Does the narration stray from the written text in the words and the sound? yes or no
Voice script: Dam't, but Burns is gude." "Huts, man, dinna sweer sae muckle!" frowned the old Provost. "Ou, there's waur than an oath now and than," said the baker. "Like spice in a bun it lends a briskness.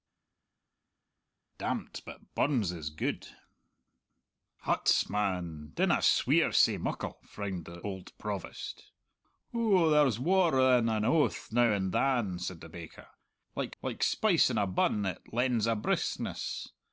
yes